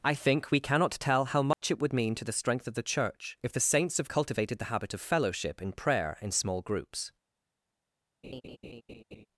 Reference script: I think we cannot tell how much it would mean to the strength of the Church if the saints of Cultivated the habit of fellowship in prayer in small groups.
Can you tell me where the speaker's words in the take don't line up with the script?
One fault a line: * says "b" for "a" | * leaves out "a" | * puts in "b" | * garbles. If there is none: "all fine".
all fine